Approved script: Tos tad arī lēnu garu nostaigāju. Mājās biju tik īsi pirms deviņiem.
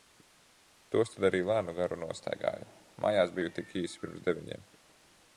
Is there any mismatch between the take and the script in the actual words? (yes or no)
no